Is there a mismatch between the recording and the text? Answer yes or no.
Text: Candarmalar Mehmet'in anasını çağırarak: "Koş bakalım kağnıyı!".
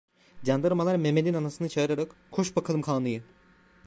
no